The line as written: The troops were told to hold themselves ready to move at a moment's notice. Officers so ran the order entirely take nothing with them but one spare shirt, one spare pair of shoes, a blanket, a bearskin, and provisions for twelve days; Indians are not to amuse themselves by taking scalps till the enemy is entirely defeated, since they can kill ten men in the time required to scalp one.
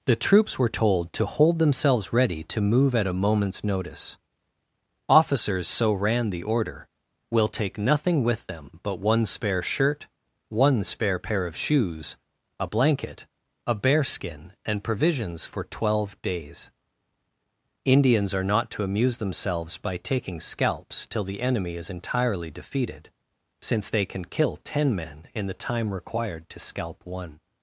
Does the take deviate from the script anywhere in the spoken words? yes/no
yes